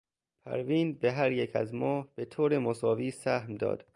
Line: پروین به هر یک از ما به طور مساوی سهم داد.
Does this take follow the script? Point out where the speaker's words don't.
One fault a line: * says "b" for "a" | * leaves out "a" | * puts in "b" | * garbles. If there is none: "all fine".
all fine